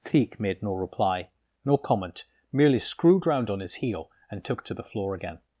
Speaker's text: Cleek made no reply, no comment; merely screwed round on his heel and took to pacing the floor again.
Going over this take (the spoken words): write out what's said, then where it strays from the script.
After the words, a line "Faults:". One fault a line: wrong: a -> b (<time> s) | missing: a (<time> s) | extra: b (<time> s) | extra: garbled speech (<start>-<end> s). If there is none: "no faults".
Cleek made no reply, no comment; merely screwed round on his heel and took to the floor again.
Faults:
missing: pacing (4.7 s)